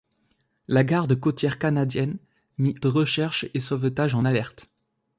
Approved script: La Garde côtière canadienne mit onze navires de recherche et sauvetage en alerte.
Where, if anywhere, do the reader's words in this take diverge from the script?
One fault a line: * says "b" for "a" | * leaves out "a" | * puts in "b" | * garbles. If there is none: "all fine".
* leaves out "onze navires"